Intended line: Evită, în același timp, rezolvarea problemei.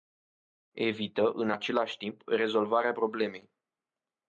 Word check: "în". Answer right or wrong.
right